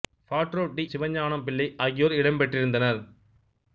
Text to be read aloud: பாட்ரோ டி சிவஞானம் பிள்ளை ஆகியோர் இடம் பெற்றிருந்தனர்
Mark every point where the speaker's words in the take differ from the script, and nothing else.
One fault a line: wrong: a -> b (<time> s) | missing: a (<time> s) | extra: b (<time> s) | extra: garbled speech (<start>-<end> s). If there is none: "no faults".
no faults